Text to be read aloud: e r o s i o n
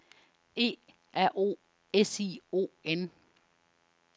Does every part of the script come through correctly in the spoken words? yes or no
yes